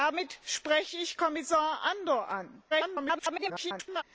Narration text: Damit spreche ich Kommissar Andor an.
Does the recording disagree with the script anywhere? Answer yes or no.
yes